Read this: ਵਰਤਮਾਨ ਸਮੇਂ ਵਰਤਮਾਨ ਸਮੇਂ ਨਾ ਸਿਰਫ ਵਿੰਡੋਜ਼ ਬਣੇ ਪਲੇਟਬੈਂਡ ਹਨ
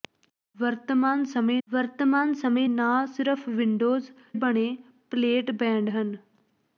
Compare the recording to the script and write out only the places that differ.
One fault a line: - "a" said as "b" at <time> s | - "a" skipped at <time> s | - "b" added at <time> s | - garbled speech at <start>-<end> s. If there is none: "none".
none